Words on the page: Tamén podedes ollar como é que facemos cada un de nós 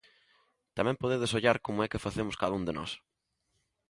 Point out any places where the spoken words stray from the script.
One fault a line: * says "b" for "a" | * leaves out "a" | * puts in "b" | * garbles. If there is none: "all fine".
all fine